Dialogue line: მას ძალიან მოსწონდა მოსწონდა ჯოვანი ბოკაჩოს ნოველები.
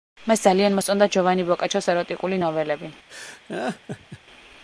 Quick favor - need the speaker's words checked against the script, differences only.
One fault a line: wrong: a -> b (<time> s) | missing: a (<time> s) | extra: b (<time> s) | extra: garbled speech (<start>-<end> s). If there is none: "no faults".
missing: მოსწონდა (1.1 s)
extra: ეროტიკული (1.9 s)